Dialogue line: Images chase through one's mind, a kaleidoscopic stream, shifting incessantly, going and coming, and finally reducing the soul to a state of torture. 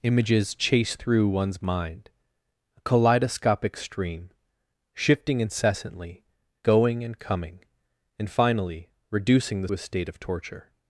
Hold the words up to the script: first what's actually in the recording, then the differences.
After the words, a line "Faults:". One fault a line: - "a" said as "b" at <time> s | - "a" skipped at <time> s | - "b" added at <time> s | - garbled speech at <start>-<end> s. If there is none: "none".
Images chase through one's mind, a kaleidoscopic stream, shifting incessantly, going and coming, and finally reducing the a state of torture.
Faults:
- "soul to" skipped at 9.7 s